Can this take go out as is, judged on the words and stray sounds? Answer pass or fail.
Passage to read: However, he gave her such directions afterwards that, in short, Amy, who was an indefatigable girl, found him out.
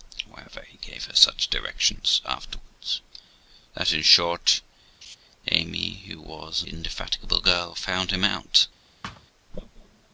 fail